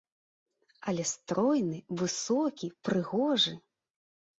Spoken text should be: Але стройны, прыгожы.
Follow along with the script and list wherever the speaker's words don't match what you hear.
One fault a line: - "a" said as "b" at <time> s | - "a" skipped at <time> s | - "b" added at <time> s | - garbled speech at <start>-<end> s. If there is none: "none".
- "высокі" added at 2.0 s